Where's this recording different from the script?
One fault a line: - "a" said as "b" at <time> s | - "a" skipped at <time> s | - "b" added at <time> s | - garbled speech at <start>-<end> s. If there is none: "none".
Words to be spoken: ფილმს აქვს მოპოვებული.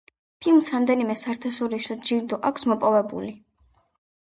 - "რამდენიმე საერთაშორისო ჯილდო" added at 0.8 s